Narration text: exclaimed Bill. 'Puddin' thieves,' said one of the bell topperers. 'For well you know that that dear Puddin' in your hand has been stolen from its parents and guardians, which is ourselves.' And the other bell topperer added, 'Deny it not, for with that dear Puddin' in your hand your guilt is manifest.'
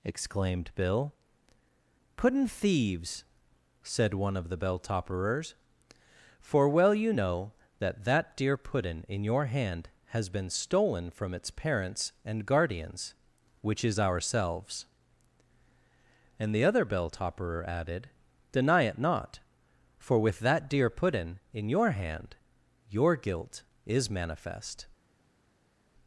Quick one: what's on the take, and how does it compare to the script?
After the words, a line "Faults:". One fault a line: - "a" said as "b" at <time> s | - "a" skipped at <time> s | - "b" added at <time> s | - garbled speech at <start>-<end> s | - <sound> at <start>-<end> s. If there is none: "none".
exclaimed Bill. 'Puddin' thieves,' said one of the bell topperers. 'For well you know that that dear Puddin' in your hand has been stolen from its parents and guardians, which is ourselves.' And the other bell topperer added, 'Deny it not, for with that dear Puddin' in your hand your guilt is manifest.'
Faults:
none